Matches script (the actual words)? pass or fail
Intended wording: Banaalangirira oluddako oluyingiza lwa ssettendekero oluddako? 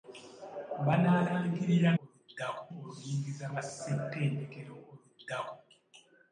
pass